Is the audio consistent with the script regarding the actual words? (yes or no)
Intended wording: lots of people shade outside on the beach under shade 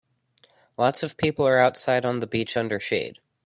no